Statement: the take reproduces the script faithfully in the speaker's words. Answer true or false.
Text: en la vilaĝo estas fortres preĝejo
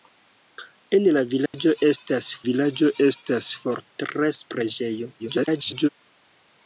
false